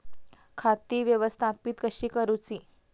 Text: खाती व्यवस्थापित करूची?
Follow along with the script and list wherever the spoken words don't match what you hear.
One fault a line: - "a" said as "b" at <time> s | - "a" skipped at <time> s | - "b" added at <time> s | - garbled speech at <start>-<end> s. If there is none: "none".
- "कशी" added at 1.8 s